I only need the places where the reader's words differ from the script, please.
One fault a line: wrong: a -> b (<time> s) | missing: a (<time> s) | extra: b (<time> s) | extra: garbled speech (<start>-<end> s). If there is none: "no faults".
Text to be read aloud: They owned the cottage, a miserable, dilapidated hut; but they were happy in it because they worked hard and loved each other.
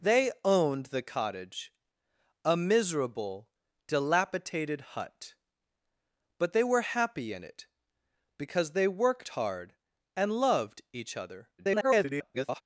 extra: garbled speech (11.6-12.6 s)